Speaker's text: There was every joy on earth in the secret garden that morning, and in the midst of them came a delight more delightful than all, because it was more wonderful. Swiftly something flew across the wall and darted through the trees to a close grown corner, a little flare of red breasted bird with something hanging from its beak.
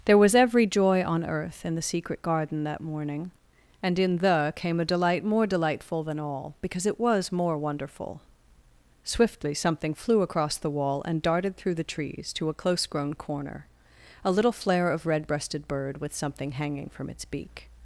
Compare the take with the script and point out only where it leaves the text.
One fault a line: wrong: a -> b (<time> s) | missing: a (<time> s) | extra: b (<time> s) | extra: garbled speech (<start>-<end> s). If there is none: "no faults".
missing: midst of them (4.5 s)